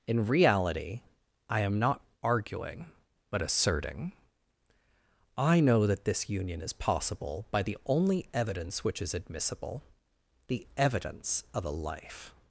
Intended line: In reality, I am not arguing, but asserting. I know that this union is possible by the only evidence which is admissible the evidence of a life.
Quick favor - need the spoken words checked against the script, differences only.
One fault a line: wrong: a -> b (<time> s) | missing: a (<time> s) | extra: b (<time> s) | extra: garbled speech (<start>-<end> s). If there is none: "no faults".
no faults